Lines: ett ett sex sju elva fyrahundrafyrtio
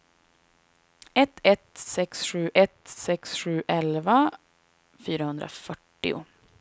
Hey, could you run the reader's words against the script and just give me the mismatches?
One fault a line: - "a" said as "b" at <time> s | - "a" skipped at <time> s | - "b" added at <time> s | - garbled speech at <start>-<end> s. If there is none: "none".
- "ett sex sju" added at 2.5 s